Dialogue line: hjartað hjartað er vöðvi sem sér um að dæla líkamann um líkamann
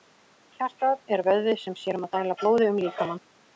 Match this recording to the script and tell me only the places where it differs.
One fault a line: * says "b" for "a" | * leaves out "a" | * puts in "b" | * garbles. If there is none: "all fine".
* leaves out "hjartað"
* says "blóði" for "líkamann"